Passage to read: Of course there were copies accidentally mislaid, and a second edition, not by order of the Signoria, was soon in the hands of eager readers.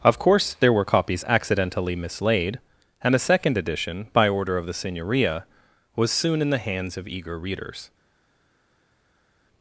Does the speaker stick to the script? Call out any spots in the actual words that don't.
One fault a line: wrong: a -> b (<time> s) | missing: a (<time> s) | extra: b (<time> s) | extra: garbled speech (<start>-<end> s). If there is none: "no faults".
missing: not (4.1 s)